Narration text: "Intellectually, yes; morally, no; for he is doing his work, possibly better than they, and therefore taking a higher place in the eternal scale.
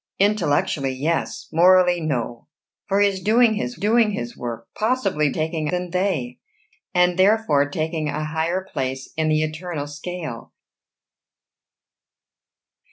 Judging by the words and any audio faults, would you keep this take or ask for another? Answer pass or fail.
fail